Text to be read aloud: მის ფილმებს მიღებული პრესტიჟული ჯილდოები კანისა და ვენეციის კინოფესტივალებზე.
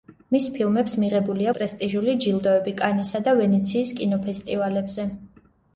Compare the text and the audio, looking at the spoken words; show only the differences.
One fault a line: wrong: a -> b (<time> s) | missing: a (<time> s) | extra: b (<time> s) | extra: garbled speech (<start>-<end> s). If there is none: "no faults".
no faults